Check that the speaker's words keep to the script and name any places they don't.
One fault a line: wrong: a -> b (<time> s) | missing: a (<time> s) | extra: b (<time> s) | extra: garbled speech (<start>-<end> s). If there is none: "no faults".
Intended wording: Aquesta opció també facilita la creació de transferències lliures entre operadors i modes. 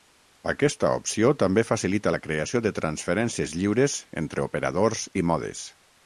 no faults